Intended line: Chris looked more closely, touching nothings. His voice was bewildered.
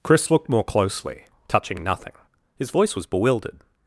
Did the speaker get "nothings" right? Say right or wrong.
wrong